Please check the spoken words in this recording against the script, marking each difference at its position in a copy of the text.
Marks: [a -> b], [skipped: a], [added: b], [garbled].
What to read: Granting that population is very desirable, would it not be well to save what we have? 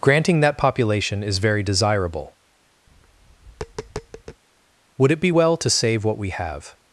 Granting that population is very desirable, would it [skipped: not] be well to save what we have?